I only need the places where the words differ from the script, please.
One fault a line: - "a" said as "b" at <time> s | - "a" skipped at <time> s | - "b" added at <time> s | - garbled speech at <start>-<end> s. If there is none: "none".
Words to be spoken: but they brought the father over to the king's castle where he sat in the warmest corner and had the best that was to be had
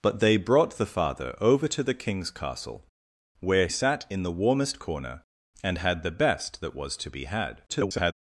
- "he" skipped at 3.7 s
- garbled speech at 7.7-8.1 s